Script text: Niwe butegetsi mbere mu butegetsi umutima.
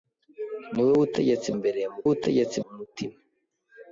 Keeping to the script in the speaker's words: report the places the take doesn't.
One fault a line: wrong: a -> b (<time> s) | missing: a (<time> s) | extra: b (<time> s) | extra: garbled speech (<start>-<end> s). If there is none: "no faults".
no faults